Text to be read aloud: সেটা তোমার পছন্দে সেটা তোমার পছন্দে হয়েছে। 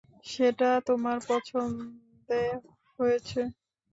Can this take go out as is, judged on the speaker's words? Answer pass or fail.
fail